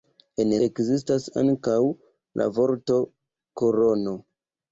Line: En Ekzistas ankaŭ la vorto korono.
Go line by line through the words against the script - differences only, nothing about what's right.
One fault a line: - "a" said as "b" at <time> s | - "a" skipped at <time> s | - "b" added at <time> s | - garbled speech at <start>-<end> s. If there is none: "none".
none